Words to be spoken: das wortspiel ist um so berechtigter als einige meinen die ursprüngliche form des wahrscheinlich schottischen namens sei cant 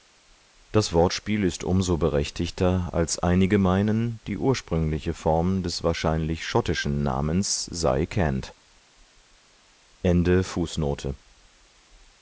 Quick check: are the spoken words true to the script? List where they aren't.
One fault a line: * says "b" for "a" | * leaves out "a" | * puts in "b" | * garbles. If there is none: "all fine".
all fine